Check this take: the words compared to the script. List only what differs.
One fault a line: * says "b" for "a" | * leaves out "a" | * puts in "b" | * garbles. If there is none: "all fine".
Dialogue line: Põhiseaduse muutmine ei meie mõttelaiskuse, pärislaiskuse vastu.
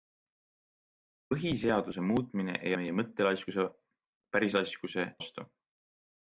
all fine